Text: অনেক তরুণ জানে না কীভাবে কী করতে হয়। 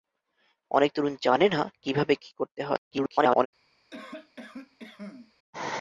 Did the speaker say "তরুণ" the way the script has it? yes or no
yes